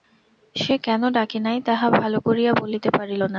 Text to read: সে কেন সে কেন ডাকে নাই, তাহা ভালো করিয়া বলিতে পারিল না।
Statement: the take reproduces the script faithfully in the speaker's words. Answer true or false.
false